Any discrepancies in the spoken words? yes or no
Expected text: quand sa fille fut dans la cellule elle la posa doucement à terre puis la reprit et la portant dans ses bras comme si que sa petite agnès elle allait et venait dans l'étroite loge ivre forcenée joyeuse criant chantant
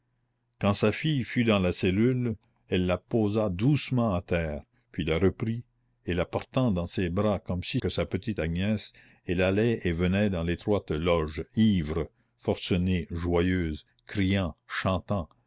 no